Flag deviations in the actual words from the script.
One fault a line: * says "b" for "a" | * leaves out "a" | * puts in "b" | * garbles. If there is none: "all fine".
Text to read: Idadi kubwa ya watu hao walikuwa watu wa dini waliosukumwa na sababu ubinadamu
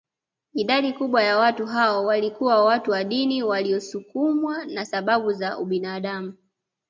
* puts in "za"